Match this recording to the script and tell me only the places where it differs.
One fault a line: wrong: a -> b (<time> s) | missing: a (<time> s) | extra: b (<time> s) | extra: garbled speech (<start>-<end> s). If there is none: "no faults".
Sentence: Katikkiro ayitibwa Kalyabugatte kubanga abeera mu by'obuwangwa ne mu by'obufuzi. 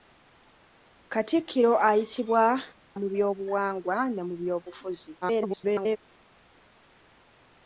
missing: Kalyabugatte kubanga abeera (2.4 s)
extra: garbled speech (5.2-6.0 s)